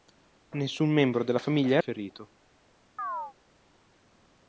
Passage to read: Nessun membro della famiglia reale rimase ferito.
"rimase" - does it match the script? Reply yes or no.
no